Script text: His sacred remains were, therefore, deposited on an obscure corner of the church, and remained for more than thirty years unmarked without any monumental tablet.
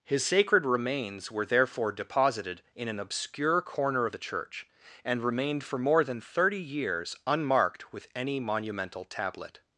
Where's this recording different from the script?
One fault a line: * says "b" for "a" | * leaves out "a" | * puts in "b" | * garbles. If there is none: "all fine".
* says "in" for "on"
* says "with" for "without"